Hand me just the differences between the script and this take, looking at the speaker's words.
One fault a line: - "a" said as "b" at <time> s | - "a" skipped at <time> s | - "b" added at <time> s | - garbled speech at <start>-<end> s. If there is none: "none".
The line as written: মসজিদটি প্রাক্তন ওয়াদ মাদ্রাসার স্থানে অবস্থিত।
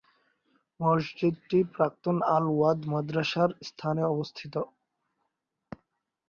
- "আল" added at 2.4 s